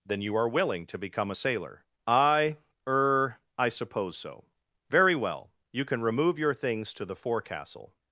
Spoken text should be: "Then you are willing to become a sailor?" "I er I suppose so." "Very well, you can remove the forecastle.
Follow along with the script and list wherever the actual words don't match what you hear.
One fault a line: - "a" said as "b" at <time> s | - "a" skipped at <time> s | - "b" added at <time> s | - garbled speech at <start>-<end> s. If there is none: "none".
- "your things to" added at 6.4 s